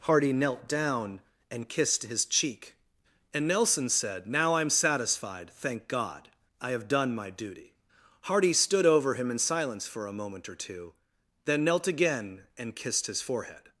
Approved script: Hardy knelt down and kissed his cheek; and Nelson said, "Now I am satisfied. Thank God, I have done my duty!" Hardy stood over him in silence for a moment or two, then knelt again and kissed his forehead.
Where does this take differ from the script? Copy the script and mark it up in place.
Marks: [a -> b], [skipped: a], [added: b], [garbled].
Hardy knelt down and kissed his cheek; and Nelson said, "Now I am satisfied. Thank God, I have done my duty!" Hardy stood over him in silence for a moment or two, then knelt again and kissed his forehead.